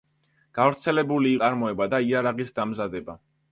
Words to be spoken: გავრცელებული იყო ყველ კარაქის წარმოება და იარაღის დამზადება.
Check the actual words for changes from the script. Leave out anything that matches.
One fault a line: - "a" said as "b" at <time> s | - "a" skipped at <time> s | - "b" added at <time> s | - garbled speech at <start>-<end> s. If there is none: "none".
- "იყო ყველ კარაქის" skipped at 1.3 s